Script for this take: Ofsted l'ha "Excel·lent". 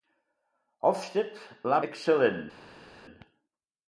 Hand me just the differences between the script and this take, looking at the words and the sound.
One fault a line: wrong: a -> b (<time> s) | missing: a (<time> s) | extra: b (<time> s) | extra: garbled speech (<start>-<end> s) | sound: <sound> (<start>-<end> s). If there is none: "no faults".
no faults